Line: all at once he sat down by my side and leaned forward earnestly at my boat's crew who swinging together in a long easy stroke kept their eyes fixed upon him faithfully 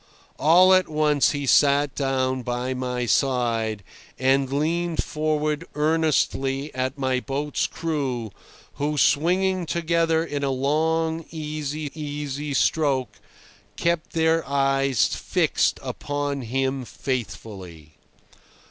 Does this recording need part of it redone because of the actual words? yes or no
yes